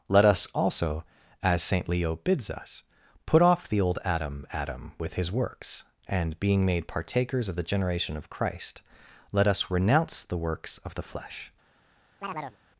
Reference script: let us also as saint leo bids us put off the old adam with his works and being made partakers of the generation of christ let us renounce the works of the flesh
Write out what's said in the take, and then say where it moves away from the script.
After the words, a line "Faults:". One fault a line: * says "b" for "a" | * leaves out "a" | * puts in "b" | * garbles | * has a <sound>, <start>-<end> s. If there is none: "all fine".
let us also as saint leo bids us put off the old adam adam with his works and being made partakers of the generation of christ let us renounce the works of the flesh
Faults:
* puts in "adam"
* has a chirp, 12.2-12.6 s